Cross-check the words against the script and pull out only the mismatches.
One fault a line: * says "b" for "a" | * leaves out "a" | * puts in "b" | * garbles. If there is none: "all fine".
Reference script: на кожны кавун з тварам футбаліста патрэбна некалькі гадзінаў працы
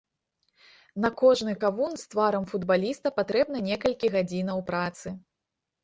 all fine